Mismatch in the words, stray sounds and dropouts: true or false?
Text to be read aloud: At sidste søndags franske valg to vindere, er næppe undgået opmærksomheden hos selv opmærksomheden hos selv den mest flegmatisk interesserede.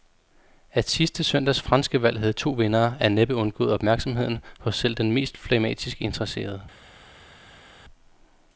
true